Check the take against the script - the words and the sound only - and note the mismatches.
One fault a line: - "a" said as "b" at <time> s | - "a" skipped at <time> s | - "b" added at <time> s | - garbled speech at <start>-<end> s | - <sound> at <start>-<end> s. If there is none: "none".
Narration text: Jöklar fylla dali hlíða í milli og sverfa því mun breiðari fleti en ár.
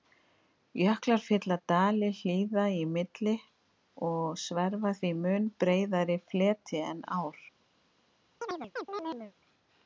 - chirp at 8.4-9.3 s